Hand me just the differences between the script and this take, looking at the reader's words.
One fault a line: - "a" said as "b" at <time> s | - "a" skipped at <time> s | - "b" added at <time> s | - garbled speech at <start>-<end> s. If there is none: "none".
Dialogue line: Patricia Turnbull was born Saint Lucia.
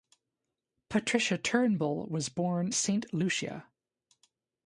none